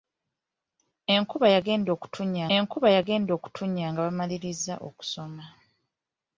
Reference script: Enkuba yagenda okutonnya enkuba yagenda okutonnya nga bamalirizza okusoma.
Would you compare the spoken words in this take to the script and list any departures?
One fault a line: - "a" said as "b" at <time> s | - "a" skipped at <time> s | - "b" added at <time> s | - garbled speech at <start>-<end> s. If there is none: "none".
none